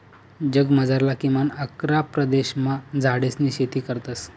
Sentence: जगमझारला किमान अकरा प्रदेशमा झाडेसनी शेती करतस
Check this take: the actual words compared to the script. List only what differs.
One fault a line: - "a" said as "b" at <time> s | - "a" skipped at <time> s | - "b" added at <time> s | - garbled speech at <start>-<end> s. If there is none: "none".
none